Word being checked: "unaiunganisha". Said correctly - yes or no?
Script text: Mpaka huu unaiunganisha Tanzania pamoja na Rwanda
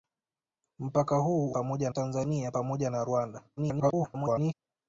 no